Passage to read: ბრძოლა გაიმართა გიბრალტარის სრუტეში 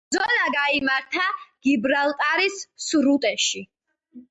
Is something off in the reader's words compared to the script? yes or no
no